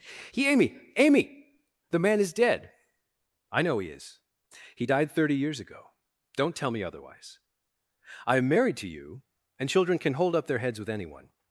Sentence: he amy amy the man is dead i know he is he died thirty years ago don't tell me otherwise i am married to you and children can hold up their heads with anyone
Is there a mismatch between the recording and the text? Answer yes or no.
no